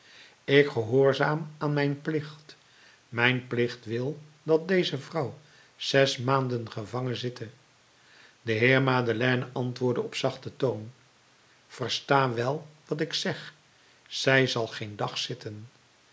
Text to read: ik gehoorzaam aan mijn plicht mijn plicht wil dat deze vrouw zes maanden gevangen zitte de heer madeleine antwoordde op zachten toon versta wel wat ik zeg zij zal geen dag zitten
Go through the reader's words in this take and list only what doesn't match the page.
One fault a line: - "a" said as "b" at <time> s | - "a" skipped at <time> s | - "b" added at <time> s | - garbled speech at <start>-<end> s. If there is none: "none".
none